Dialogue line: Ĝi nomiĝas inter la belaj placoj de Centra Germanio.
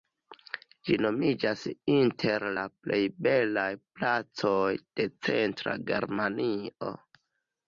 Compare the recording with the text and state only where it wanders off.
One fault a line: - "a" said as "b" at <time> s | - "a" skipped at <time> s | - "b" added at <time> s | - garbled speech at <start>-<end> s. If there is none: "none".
- "plej" added at 2.8 s